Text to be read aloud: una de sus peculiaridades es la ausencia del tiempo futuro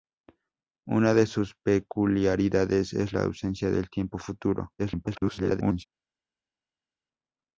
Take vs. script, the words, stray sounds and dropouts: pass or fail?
fail